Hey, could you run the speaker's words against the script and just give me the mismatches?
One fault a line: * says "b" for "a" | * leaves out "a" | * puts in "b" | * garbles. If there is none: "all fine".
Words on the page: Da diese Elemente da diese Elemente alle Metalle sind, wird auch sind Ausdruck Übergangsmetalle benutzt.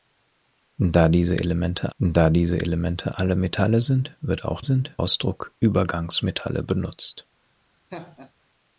all fine